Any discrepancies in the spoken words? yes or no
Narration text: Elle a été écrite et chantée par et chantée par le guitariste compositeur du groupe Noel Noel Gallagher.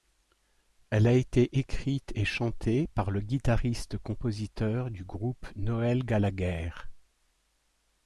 yes